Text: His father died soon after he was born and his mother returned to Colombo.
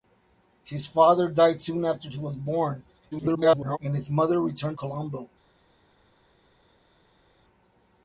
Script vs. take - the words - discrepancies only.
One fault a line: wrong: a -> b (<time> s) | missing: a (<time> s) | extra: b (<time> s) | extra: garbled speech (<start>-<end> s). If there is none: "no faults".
extra: garbled speech (3.1-3.8 s)
missing: to (4.8 s)